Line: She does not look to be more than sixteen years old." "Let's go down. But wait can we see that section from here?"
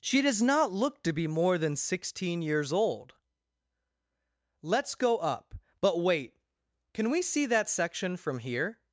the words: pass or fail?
fail